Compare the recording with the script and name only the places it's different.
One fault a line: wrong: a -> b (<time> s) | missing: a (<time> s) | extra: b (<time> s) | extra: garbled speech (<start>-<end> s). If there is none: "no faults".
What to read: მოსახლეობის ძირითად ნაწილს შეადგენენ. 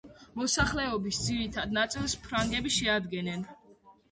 extra: ფრანგები (2.2 s)